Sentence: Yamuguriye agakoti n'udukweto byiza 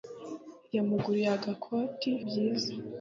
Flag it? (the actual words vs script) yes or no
yes